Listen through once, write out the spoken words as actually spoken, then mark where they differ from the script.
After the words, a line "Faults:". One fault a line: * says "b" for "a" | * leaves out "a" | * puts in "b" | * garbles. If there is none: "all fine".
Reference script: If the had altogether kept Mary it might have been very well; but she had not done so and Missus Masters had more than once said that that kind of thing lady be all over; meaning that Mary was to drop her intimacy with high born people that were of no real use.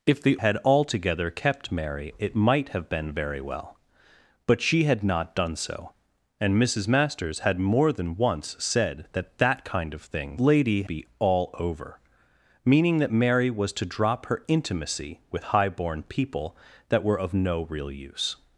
If the had altogether kept Mary it might have been very well; but she had not done so and Missus Masters had more than once said that that kind of thing lady be all over; meaning that Mary was to drop her intimacy with high born people that were of no real use.
Faults:
all fine